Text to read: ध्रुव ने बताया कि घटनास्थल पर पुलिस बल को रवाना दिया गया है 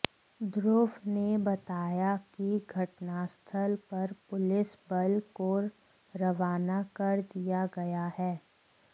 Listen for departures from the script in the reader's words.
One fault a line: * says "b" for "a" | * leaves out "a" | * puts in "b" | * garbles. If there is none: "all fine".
* puts in "कर"